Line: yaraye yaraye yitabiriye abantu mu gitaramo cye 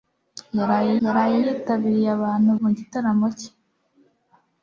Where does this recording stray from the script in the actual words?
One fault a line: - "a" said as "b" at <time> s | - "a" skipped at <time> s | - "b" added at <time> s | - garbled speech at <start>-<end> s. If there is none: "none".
none